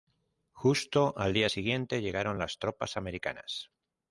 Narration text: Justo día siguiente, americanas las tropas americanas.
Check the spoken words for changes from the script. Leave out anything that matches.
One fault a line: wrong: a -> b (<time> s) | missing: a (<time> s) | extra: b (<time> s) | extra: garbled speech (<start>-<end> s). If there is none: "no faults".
extra: al (1.1 s)
wrong: americanas -> llegaron (2.0 s)